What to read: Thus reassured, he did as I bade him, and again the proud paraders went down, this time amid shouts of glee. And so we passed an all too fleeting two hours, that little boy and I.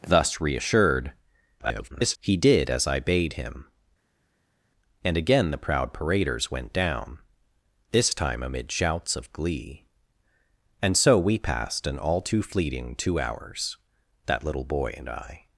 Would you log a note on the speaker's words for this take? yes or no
yes